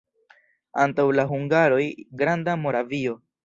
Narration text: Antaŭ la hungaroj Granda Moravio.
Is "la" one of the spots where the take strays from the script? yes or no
no